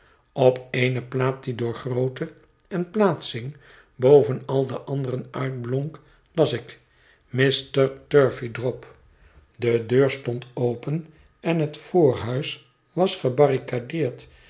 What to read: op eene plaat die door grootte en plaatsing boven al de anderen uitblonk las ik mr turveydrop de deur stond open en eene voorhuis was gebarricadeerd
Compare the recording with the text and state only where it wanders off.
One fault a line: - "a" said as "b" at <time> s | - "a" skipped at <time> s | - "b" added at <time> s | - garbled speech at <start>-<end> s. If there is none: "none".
- "eene" said as "het" at 11.6 s